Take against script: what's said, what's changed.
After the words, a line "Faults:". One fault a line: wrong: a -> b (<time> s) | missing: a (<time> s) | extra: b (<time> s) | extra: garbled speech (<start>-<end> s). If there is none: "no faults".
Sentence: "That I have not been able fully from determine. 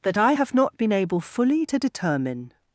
"That I have not been able fully to determine.
Faults:
wrong: from -> to (1.6 s)